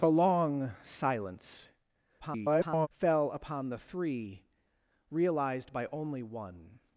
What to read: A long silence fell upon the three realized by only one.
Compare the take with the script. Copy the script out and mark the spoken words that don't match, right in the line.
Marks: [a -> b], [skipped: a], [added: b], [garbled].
A long silence [garbled] fell upon the three realized by only one.